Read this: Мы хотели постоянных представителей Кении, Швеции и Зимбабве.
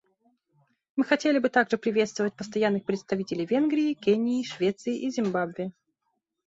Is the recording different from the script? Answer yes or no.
yes